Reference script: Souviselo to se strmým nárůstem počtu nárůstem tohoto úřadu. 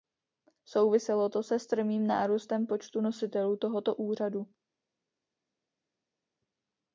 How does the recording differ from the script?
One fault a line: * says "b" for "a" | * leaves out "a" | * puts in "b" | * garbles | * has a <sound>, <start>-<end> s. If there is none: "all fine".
* says "nositelů" for "nárůstem"